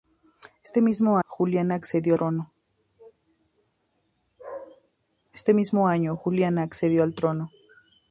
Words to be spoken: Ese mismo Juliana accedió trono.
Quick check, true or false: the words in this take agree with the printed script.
true